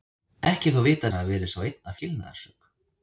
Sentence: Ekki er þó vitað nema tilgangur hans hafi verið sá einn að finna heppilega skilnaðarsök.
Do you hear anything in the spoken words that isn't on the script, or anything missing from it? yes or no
yes